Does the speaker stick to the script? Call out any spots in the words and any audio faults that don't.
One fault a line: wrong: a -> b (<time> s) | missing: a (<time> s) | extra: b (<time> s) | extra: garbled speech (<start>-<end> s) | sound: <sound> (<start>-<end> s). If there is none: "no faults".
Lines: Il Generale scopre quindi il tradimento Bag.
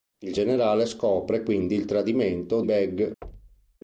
sound: thud (3.2-3.8 s)